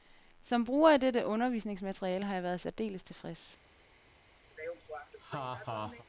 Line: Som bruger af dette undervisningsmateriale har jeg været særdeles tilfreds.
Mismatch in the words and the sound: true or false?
true